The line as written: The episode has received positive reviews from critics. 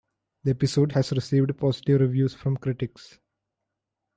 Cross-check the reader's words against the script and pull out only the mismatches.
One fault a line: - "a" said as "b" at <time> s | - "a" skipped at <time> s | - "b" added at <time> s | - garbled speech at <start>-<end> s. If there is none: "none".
none